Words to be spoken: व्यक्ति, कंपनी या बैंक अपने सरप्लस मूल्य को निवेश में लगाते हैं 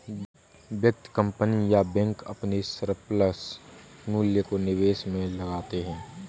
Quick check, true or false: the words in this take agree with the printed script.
true